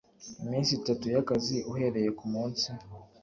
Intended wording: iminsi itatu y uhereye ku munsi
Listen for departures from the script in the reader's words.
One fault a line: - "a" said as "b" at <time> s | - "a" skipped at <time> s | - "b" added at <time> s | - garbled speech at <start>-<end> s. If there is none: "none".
- "akazi" added at 1.2 s